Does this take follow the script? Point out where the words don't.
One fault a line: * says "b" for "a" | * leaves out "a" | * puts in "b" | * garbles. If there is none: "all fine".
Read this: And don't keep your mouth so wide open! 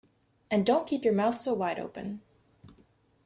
all fine